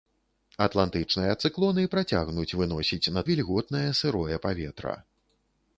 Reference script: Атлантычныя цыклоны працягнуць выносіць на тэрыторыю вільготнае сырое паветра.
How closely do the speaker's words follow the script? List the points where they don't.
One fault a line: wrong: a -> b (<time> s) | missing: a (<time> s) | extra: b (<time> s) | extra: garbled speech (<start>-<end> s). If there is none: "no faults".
missing: тэрыторыю (3.2 s)